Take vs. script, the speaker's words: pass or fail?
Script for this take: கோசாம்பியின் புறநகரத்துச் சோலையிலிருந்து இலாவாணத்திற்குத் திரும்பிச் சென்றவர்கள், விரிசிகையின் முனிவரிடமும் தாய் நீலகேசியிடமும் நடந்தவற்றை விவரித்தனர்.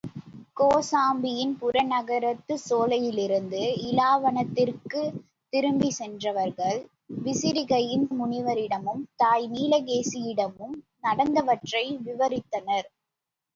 pass